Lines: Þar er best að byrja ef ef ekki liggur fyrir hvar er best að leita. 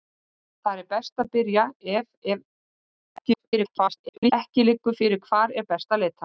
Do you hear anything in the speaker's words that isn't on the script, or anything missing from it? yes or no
yes